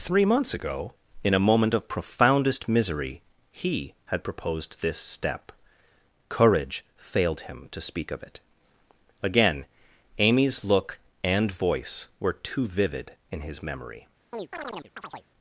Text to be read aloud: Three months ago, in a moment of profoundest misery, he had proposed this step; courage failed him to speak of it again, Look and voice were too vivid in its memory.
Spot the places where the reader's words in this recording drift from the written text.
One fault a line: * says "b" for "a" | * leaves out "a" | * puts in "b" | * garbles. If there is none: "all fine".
* puts in "Amy's"
* says "his" for "its"